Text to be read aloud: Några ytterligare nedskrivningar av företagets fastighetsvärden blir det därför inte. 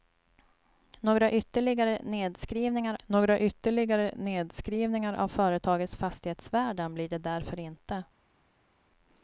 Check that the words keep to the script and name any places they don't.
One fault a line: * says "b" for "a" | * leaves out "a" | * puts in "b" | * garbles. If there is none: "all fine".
* puts in "några ytterligare nedskrivningar"